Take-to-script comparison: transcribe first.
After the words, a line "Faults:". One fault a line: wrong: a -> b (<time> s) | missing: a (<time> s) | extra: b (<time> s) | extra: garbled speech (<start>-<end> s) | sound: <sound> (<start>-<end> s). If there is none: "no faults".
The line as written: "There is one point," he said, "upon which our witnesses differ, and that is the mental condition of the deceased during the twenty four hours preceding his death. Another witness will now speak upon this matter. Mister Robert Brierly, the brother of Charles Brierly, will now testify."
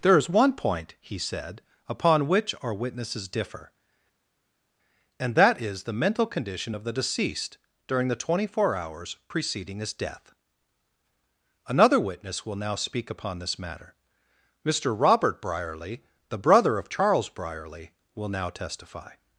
"There is one point," he said, "upon which our witnesses differ, and that is the mental condition of the deceased during the twenty four hours preceding his death. Another witness will now speak upon this matter. Mister Robert Brierly, the brother of Charles Brierly, will now testify."
Faults:
no faults